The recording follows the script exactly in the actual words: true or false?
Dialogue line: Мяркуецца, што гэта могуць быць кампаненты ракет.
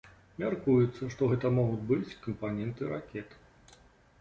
true